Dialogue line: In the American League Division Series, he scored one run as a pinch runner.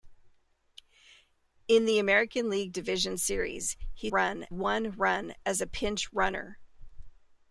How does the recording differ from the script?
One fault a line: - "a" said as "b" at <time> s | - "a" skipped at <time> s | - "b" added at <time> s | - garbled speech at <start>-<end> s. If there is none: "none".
- "scored" said as "run" at 4.1 s